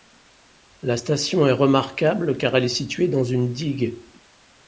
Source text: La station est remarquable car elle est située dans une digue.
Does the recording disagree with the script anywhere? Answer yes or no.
no